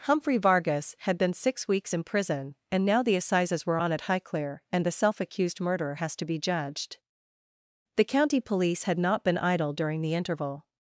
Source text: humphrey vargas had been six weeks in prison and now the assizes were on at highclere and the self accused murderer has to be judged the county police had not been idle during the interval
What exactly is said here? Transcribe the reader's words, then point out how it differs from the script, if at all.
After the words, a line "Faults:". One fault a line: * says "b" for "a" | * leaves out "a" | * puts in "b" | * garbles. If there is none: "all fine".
humphrey vargas had been six weeks in prison and now the assizes were on at highclere and the self accused murderer has to be judged the county police had not been idle during the interval
Faults:
all fine